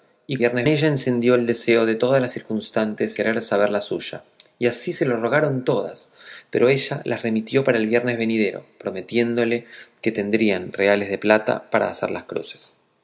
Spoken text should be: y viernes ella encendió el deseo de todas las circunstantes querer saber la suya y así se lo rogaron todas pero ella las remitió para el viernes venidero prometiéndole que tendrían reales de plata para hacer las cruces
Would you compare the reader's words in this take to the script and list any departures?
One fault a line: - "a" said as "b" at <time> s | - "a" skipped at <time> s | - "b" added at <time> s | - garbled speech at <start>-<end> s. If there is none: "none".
none